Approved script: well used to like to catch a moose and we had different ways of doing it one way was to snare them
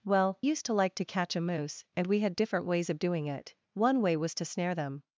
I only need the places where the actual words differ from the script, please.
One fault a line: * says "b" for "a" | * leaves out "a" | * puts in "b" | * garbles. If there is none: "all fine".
all fine